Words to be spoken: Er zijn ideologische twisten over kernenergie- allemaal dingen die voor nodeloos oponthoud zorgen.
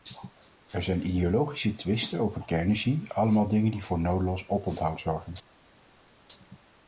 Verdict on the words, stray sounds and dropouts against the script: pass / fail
pass